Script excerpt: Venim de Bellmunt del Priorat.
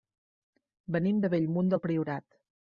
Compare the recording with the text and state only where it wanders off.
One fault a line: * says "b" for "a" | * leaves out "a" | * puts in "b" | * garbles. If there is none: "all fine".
all fine